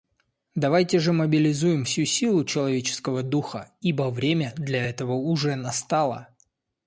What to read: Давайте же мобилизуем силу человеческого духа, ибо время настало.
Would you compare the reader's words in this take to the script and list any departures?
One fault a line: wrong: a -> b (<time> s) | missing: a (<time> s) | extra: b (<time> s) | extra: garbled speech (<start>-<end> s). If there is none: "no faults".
extra: всю (1.8 s)
extra: для этого уже (4.6 s)